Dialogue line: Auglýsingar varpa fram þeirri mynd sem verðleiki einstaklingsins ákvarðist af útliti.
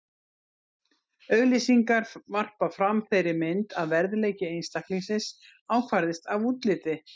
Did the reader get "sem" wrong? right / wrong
wrong